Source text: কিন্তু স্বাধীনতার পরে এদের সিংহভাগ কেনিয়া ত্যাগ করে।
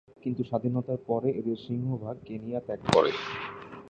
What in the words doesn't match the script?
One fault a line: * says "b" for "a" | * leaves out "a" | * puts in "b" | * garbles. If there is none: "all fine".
all fine